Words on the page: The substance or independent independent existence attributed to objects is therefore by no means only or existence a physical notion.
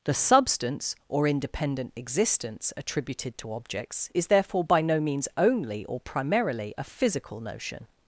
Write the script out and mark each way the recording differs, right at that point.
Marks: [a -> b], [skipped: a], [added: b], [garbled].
The substance or independent [skipped: independent] existence attributed to objects is therefore by no means only or [existence -> primarily] a physical notion.